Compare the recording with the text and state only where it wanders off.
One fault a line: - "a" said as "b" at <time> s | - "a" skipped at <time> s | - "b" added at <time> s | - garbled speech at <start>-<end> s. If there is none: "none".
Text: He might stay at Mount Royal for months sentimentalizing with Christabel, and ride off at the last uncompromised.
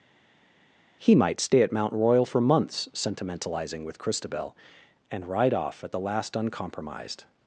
none